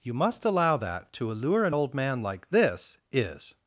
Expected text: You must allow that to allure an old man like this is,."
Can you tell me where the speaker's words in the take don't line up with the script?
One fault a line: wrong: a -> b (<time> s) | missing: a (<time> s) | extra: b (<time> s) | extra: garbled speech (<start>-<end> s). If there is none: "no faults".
no faults